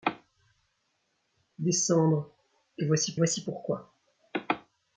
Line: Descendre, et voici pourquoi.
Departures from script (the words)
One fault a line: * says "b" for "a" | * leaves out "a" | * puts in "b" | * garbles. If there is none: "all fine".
* puts in "voici"